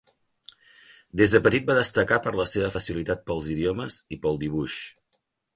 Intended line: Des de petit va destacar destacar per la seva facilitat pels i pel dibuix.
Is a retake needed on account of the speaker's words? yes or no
yes